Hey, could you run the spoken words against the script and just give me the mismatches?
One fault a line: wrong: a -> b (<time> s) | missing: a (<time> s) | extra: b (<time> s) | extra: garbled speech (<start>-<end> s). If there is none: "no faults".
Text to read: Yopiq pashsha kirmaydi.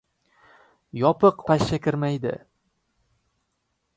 no faults